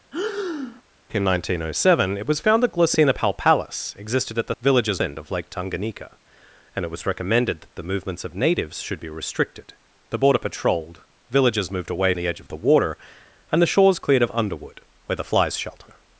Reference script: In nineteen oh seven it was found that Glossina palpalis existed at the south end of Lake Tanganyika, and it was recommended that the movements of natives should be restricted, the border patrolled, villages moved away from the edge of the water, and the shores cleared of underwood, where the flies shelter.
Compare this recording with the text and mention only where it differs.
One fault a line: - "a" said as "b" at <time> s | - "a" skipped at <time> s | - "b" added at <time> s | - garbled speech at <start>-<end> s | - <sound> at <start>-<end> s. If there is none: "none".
- breath at 0.1-0.8 s
- "south" said as "villages" at 4.6 s
- "from" skipped at 12.1 s